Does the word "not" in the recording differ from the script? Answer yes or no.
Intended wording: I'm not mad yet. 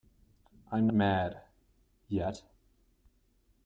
yes